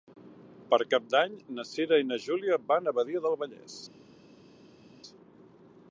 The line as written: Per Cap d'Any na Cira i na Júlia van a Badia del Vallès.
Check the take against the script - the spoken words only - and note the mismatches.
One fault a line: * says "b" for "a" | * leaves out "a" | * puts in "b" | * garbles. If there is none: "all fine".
all fine